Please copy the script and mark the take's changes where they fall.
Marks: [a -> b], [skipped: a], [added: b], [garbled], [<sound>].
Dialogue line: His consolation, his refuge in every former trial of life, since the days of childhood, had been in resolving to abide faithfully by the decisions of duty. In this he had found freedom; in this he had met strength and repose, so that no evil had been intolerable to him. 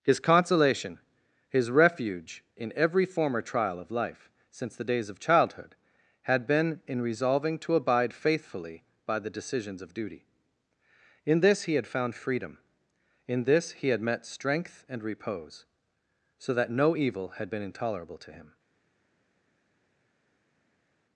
His consolation, his refuge in every former trial of life, since the days of childhood, had been in resolving to abide faithfully by the decisions of duty. In this he had found freedom; in this he had met strength and repose, so that no evil had been intolerable to him.